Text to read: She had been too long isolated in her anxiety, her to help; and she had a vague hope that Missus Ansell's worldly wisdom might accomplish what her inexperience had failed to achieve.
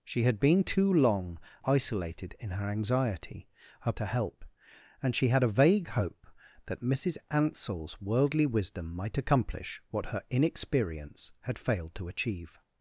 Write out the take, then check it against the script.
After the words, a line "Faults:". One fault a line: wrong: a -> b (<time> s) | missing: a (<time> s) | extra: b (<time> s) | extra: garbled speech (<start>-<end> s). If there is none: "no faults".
She had been too long isolated in her anxiety, her to help; and she had a vague hope that Missus Ansell's worldly wisdom might accomplish what her inexperience had failed to achieve.
Faults:
no faults